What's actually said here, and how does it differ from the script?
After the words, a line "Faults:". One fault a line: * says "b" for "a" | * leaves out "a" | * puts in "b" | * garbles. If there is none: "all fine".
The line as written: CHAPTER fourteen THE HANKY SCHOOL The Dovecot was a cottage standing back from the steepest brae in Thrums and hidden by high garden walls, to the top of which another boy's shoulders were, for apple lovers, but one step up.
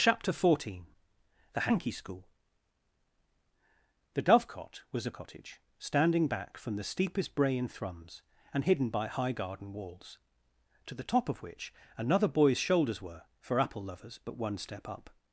CHAPTER fourteen THE HANKY SCHOOL The Dovecot was a cottage standing back from the steepest brae in Thrums and hidden by high garden walls, to the top of which another boy's shoulders were, for apple lovers, but one step up.
Faults:
all fine